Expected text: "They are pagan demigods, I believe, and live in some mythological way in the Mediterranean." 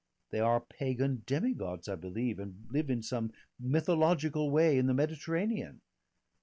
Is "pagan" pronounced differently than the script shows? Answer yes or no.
no